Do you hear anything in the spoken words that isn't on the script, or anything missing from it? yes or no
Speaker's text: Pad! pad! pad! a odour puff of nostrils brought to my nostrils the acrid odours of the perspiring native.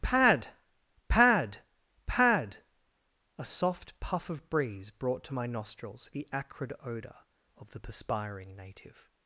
yes